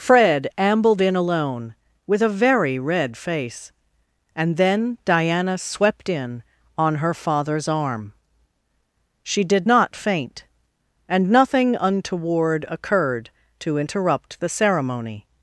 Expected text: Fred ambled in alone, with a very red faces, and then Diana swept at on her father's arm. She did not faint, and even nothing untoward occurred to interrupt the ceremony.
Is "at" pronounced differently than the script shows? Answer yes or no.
yes